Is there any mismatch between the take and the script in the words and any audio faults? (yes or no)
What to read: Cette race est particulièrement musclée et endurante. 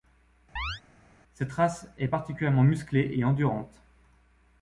yes